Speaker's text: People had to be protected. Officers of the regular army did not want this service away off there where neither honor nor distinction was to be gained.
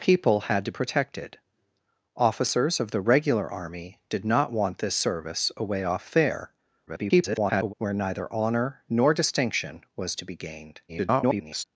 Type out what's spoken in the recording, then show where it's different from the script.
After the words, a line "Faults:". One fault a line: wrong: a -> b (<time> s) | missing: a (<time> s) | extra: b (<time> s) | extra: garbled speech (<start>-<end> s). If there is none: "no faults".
People had to protected. Officers of the regular army did not want this service away off there [garbled] where neither honor nor distinction was to be gained. [garbled]
Faults:
missing: be (0.7 s)
extra: garbled speech (6.9-7.7 s)
extra: garbled speech (10.9-11.6 s)